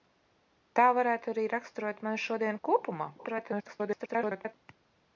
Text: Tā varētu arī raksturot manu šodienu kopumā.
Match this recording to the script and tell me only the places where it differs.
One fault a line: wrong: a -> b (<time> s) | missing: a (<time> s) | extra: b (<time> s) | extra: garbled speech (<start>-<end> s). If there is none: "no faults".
extra: garbled speech (3.2-4.5 s)